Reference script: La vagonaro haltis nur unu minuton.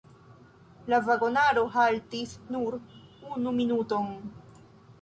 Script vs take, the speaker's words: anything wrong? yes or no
no